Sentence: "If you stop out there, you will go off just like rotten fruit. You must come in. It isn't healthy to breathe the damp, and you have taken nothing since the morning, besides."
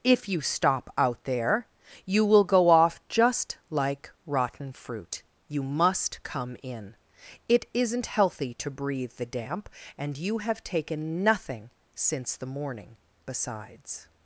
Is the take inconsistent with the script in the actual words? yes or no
no